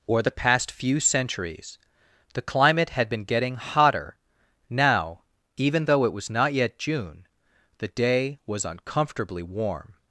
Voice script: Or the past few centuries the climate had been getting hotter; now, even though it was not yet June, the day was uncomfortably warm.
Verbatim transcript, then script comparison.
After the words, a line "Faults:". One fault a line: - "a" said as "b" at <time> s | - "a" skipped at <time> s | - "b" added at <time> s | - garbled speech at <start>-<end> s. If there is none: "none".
Or the past few centuries the climate had been getting hotter; now, even though it was not yet June, the day was uncomfortably warm.
Faults:
none